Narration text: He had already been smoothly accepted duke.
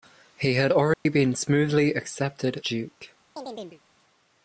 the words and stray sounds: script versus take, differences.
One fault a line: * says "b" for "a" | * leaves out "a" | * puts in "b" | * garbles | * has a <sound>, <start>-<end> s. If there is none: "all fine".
* has a dropout, 0.9-1.1 s
* has a chirp, 3.4-3.8 s